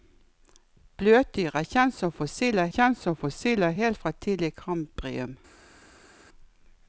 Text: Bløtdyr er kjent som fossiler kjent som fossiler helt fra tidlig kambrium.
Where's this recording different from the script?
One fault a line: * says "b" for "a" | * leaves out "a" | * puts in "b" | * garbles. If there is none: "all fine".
all fine